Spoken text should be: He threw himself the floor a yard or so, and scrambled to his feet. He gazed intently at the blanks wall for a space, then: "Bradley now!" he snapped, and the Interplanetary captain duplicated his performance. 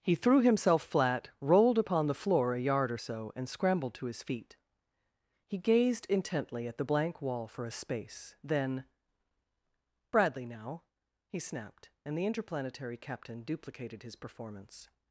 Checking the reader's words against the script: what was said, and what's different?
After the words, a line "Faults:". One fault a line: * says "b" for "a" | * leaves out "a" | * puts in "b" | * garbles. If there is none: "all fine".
He threw himself flat, rolled upon the floor a yard or so, and scrambled to his feet. He gazed intently at the blank wall for a space, then: "Bradley now!" he snapped, and the Interplanetary captain duplicated his performance.
Faults:
* puts in "flat rolled upon"
* says "blank" for "blanks"